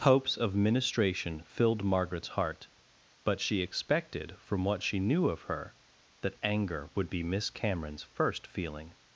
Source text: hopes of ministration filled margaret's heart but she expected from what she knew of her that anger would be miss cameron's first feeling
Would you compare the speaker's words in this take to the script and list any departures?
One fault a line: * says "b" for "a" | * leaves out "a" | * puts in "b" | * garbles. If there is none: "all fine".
all fine